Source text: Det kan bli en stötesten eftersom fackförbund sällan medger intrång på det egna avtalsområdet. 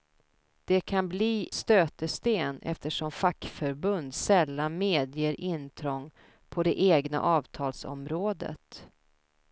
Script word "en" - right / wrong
wrong